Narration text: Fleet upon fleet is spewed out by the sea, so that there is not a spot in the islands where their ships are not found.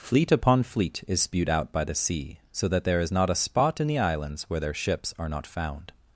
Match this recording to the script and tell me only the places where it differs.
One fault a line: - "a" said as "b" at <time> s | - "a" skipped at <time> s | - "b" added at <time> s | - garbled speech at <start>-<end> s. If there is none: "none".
none